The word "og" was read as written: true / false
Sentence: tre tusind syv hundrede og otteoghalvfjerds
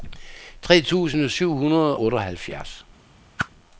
false